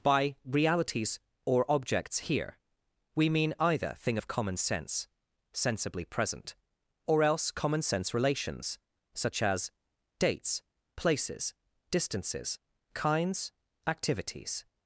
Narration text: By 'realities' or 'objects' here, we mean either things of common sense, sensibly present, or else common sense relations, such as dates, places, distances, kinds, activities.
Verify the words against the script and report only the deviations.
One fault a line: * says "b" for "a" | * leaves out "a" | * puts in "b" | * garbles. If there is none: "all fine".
* says "thing" for "things"